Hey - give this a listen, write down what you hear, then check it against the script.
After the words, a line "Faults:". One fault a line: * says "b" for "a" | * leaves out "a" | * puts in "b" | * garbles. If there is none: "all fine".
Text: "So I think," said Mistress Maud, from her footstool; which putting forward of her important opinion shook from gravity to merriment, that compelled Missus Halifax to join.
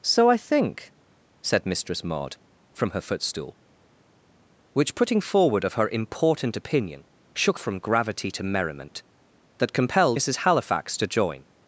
"So I think," said Mistress Maud, from her footstool; which putting forward of her important opinion shook from gravity to merriment, that compelled Missus Halifax to join.
Faults:
all fine